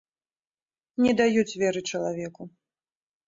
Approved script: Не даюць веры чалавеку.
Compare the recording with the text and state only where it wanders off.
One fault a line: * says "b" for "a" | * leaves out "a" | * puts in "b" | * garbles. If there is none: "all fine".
all fine